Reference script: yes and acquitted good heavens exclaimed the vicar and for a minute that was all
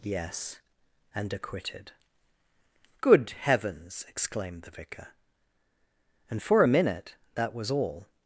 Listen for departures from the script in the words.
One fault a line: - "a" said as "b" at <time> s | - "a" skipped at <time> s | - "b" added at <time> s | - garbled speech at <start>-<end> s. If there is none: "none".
none